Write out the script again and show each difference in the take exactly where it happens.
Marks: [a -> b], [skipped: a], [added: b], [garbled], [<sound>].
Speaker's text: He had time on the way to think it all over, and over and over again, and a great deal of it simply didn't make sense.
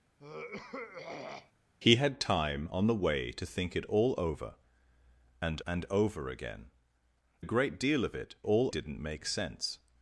[throat clearing] He had time on the way to think it all over, and [skipped: over] and over again, [skipped: and] a great deal of it [simply -> all] didn't make sense.